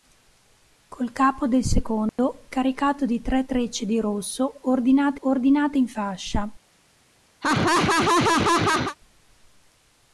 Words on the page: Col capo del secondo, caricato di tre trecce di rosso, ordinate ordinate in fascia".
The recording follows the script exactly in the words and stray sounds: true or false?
false